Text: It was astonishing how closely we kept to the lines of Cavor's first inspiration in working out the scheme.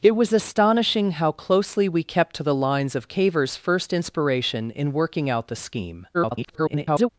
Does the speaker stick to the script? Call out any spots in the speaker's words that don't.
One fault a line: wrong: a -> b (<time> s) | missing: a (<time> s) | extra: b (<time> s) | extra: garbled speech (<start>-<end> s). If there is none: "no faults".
extra: garbled speech (6.1-7.1 s)